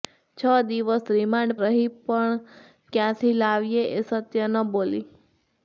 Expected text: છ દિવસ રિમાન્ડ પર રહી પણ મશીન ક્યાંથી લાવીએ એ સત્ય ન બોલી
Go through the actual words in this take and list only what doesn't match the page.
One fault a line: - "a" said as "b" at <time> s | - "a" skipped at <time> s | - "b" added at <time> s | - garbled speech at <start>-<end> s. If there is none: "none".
- "પર" skipped at 1.6 s
- "મશીન" skipped at 2.3 s